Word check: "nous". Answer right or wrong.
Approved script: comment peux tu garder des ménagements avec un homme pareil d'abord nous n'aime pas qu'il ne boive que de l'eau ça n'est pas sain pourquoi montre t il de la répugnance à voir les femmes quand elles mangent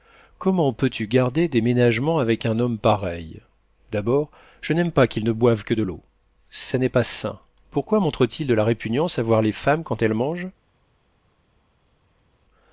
wrong